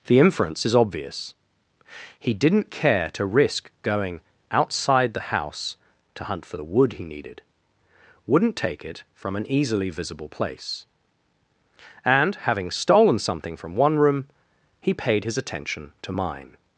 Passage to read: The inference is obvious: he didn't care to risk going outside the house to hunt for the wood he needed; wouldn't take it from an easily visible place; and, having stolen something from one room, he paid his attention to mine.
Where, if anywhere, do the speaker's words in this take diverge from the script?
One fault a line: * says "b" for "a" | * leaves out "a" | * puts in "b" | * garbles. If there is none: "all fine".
all fine